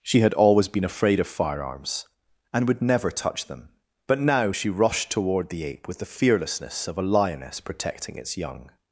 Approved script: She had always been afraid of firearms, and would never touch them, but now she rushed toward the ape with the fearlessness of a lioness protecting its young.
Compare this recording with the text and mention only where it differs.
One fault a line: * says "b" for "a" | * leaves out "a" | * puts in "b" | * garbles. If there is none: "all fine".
all fine